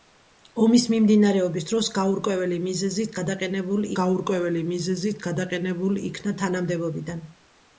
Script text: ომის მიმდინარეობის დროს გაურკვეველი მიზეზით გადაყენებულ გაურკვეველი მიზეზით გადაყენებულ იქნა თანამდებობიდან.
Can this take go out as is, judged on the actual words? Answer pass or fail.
pass